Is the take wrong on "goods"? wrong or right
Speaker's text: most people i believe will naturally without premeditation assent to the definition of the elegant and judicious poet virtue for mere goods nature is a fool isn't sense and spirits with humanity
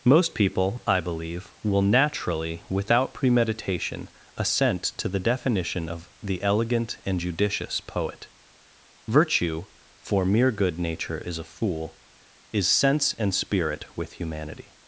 wrong